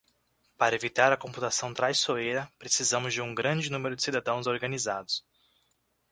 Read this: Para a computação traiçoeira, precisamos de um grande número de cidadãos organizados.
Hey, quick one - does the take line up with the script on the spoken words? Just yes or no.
no